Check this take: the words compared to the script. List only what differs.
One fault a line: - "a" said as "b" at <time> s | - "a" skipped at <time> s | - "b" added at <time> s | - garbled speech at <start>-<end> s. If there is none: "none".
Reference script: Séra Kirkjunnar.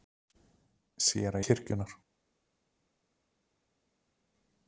none